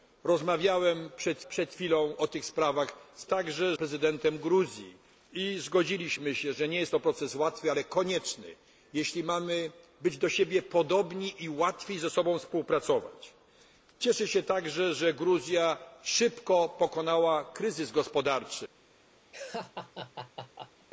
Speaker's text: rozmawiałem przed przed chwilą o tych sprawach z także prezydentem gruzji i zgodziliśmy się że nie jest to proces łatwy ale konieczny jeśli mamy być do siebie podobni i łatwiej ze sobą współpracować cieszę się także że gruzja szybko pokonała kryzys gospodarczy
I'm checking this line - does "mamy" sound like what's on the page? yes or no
yes